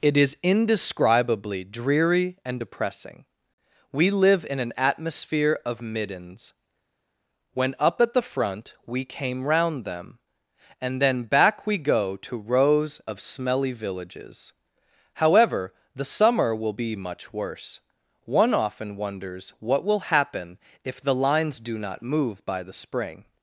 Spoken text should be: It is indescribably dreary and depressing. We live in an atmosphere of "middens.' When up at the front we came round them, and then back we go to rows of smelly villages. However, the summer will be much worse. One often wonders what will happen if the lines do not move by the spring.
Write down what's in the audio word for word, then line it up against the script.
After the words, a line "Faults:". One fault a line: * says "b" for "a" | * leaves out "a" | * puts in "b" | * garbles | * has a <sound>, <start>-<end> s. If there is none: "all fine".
It is indescribably dreary and depressing. We live in an atmosphere of "middens.' When up at the front we came round them, and then back we go to rows of smelly villages. However, the summer will be much worse. One often wonders what will happen if the lines do not move by the spring.
Faults:
all fine